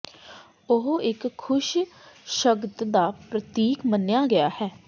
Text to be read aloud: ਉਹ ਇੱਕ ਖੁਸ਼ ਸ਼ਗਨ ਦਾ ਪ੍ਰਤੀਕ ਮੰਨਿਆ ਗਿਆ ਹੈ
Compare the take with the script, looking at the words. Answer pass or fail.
pass